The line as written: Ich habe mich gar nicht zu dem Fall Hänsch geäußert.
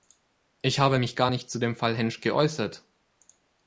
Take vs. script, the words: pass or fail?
pass